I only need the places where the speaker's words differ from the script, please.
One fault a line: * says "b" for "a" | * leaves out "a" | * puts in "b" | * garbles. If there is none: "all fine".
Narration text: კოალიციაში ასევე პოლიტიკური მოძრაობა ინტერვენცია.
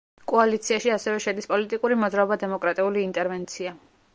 * puts in "შედის"
* puts in "დემოკრატიული"